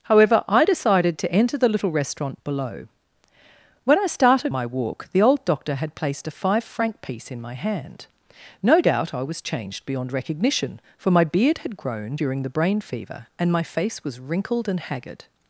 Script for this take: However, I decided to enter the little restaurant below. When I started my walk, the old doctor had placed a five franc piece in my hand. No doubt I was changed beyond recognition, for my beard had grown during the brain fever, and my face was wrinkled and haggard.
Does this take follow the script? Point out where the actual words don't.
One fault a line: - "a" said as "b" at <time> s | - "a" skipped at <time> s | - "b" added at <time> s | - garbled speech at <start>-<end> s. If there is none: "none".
none